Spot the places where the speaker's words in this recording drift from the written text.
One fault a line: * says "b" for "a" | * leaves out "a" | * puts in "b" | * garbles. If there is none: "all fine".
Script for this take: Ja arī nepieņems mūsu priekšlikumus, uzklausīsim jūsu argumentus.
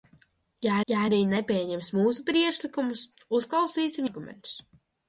* puts in "ja"
* leaves out "jūsu"